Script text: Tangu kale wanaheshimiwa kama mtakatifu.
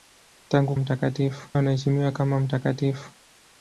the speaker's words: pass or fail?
fail